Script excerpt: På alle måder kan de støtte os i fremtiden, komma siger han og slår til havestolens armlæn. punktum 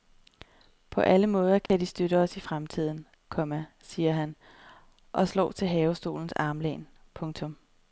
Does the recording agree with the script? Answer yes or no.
yes